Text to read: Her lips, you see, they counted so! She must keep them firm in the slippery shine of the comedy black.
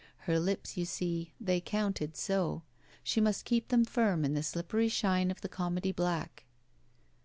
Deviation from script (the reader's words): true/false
false